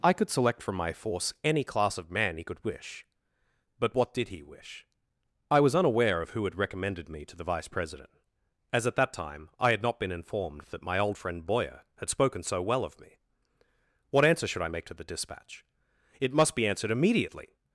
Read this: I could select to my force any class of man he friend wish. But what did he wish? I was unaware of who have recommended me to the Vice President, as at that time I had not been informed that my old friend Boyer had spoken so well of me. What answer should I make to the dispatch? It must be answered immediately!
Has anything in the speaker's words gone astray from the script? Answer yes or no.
yes